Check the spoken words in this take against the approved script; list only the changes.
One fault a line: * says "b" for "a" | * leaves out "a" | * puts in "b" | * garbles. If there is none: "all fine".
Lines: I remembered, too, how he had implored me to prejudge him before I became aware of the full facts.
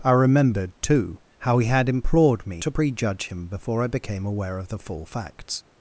all fine